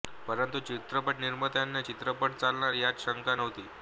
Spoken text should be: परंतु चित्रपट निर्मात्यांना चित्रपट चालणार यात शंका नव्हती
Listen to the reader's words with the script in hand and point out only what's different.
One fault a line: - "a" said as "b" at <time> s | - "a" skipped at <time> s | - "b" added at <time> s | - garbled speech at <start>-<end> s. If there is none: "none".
none